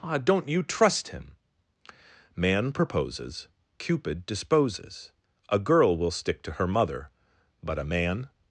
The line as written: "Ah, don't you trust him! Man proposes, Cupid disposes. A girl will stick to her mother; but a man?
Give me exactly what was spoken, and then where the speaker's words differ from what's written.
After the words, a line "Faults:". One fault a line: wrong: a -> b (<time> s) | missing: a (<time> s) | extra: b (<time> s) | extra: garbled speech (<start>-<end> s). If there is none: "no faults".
"Ah, don't you trust him! Man proposes, Cupid disposes. A girl will stick to her mother; but a man?
Faults:
no faults